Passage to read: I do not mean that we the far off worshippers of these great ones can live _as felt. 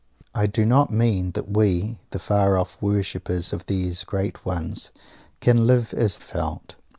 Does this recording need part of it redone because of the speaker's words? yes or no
no